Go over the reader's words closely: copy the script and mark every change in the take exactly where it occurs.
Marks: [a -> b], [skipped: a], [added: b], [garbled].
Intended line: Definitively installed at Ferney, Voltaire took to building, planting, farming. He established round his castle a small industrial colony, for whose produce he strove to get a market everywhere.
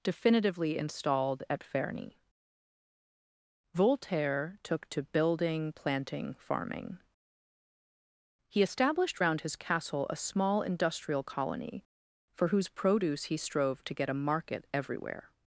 Definitively installed at Ferney, Voltaire took to building, planting, farming. He established round his castle a small industrial colony, for whose produce he strove to get a market everywhere.